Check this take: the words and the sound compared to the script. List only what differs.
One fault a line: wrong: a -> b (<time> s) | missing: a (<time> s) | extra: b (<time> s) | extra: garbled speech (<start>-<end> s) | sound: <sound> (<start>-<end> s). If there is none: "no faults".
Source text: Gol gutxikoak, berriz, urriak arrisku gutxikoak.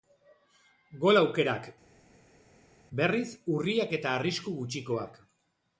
wrong: gutxikoak -> aukerak (1.2 s)
extra: eta (4.0 s)